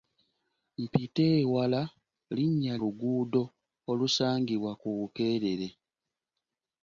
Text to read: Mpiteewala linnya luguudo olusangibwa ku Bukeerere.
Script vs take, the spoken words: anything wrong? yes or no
no